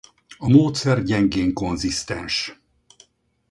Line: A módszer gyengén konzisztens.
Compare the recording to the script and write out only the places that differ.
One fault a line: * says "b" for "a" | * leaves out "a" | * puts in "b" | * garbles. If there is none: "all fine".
all fine